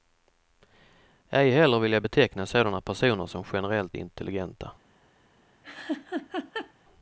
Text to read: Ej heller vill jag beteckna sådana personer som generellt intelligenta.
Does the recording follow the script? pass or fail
pass